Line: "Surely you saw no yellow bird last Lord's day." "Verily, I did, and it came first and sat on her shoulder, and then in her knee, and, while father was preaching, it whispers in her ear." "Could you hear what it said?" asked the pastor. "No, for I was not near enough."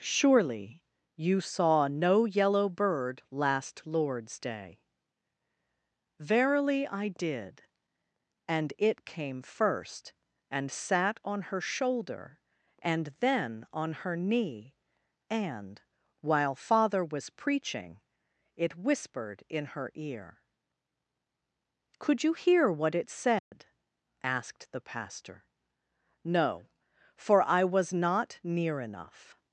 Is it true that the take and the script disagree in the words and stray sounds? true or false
true